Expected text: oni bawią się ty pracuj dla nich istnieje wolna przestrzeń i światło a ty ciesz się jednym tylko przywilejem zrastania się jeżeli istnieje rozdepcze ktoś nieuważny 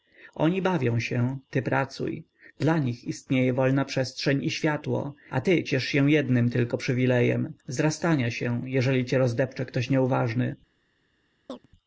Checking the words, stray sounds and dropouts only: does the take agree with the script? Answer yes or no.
no